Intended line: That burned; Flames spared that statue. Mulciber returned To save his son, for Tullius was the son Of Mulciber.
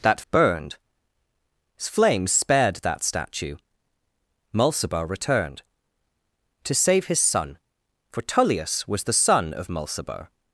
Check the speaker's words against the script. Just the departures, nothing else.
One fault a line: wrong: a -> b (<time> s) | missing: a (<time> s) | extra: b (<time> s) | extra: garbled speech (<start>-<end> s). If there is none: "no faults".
no faults